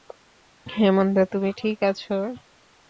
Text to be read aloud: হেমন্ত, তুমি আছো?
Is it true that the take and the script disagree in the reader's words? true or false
true